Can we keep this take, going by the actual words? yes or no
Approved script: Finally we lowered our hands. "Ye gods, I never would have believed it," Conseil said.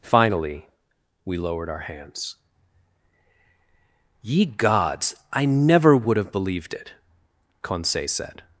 yes